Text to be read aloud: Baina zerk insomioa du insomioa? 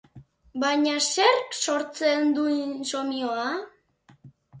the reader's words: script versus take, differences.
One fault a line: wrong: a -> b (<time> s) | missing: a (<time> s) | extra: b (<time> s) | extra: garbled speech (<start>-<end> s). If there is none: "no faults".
wrong: insomioa -> sortzen (1.6 s)